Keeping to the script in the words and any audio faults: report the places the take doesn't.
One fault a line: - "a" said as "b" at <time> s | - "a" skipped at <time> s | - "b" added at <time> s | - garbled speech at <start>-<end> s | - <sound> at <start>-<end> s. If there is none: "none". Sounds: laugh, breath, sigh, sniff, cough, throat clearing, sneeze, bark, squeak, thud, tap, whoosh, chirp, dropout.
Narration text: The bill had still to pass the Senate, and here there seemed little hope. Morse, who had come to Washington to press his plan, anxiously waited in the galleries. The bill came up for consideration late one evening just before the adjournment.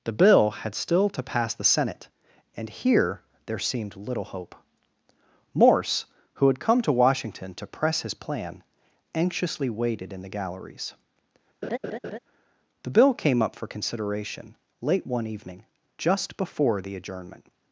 - laugh at 11.6-12.2 s